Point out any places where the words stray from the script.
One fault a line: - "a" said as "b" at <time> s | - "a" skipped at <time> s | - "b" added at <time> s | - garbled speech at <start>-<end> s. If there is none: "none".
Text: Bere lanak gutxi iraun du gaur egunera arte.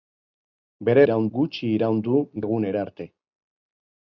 - "lanak" said as "iraun" at 1.0 s
- "gaur" skipped at 2.2 s